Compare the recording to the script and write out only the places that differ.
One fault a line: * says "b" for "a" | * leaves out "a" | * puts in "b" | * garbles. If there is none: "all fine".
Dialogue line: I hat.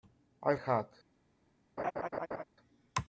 all fine